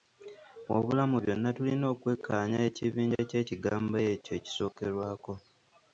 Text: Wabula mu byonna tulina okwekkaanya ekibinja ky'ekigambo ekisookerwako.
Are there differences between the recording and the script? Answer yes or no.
yes